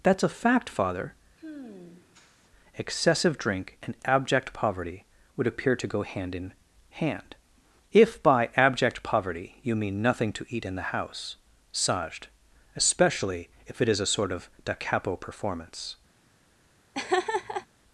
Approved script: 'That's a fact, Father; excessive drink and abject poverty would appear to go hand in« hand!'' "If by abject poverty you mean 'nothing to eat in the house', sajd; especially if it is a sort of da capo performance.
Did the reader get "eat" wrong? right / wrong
right